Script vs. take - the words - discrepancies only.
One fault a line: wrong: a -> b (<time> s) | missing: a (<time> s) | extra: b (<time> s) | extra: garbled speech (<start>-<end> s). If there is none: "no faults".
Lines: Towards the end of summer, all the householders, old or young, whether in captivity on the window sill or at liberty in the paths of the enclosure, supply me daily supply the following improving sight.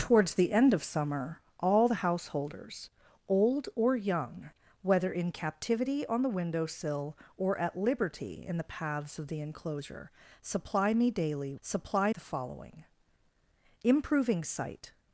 no faults